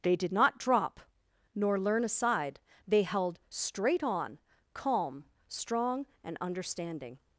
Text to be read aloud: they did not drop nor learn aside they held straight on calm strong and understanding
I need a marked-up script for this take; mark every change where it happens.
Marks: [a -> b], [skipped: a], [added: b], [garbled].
they did not drop nor learn aside they held straight on calm strong and understanding